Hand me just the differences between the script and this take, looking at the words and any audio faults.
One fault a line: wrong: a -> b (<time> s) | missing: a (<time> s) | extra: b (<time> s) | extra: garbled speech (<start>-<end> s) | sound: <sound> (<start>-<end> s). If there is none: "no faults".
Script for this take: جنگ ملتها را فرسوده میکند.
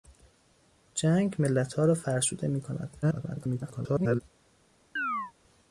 extra: garbled speech (3.0-4.2 s)
sound: chirp (5.0-5.3 s)